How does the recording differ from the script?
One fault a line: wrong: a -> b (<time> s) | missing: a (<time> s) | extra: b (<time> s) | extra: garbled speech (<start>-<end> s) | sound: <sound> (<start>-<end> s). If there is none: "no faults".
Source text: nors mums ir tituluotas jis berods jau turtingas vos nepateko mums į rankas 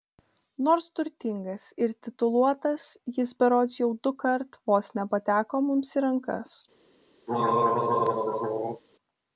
wrong: mums -> turtingas (1.0 s)
wrong: turtingas -> dukart (4.1 s)
sound: throat clearing (7.3-8.8 s)